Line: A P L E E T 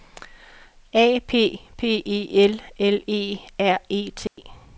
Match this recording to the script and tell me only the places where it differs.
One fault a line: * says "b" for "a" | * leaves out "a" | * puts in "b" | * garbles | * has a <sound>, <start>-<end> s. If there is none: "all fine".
* puts in "P E"
* puts in "L"
* puts in "R"
* has a dropout, 4.3-4.4 s